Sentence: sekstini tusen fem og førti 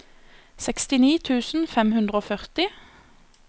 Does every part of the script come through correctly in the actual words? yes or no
no